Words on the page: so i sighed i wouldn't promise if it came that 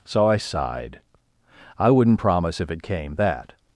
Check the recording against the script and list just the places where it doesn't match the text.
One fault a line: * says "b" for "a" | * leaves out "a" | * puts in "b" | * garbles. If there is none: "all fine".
all fine